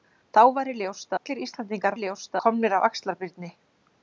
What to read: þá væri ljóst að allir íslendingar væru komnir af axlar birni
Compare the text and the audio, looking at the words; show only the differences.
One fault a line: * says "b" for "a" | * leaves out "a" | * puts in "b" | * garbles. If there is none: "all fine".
* leaves out "að"
* says "ljóst" for "væru"